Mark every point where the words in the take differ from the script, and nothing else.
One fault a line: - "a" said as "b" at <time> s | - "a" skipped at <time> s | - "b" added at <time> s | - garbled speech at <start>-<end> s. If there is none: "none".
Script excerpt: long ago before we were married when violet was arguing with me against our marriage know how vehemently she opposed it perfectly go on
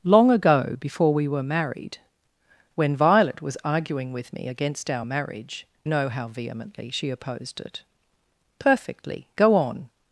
none